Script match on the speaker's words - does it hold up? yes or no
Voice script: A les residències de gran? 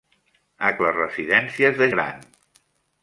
yes